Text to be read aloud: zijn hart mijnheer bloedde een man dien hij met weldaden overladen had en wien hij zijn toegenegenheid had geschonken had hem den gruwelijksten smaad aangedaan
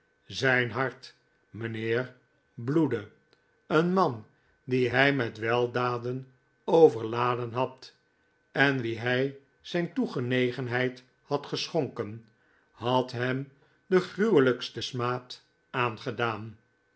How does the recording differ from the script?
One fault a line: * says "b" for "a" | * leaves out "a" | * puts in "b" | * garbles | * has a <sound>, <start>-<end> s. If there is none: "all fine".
all fine